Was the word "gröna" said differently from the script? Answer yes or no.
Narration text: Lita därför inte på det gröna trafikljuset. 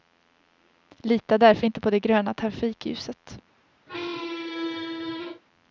no